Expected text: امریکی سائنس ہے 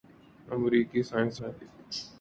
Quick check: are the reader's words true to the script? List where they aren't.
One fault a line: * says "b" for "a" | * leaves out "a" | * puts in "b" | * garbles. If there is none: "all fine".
all fine